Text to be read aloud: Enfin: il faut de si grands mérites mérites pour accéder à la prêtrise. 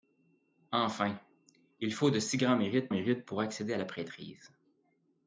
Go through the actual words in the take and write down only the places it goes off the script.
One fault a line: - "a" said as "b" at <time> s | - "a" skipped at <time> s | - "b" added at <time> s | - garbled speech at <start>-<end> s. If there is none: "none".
none